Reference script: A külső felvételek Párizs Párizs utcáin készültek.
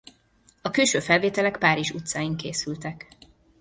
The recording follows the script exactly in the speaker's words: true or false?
false